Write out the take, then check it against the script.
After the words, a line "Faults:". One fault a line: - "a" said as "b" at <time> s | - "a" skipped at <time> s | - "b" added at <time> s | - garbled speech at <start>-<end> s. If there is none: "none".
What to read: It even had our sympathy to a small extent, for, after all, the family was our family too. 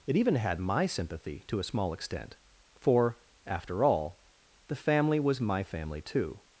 It even had my sympathy to a small extent, for, after all, the family was my family too.
Faults:
- "our" said as "my" at 0.6 s
- "our" said as "my" at 5.4 s